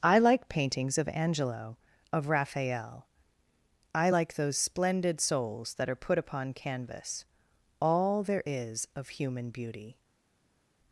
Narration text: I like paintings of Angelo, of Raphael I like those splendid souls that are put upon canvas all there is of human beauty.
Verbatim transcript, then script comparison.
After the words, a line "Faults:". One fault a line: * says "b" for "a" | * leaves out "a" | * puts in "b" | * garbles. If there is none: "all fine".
I like paintings of Angelo, of Raphael I like those splendid souls that are put upon canvas all there is of human beauty.
Faults:
all fine